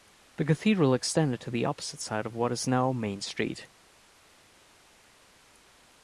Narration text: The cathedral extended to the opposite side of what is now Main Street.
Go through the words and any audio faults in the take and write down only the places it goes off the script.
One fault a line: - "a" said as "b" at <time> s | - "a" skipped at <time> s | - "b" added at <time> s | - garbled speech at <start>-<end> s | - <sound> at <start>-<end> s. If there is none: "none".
none